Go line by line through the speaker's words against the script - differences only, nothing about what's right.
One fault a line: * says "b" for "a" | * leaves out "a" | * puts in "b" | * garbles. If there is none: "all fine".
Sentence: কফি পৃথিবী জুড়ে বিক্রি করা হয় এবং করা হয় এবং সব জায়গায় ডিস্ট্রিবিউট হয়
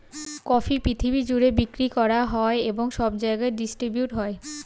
* leaves out "করা হয় এবং"